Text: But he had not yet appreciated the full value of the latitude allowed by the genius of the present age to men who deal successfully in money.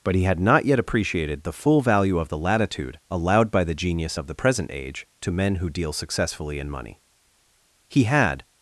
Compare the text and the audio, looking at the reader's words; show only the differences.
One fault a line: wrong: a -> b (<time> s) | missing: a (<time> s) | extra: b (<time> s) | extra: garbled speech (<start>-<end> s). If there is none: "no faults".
extra: He had (7.9 s)